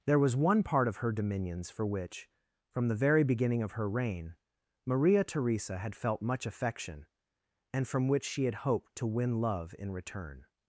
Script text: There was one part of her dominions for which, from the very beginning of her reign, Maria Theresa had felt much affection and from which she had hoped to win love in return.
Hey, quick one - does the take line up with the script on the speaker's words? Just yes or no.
yes